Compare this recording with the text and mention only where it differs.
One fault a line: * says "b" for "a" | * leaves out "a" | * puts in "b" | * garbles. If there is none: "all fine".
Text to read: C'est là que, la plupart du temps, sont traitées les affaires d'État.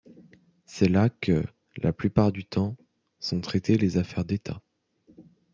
all fine